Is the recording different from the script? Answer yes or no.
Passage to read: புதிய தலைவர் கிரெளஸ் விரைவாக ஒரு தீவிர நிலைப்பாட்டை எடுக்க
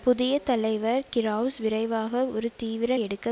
yes